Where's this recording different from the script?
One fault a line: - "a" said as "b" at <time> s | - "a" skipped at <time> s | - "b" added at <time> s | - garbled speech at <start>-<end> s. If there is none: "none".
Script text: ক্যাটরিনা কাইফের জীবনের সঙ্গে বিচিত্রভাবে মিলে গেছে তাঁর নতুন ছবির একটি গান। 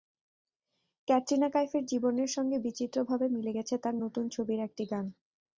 none